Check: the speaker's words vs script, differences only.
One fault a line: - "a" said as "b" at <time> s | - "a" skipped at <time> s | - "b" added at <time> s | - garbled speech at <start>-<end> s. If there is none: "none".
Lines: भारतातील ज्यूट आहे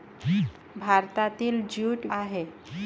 none